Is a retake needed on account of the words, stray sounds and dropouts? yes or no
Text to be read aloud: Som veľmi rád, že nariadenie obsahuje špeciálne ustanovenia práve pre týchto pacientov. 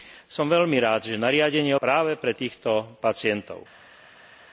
yes